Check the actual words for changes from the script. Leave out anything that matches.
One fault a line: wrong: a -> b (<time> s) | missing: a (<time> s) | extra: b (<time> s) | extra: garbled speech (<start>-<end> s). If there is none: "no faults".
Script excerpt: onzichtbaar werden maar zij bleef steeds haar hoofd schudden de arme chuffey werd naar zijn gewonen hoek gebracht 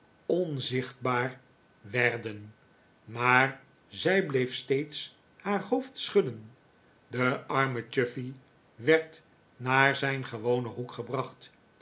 no faults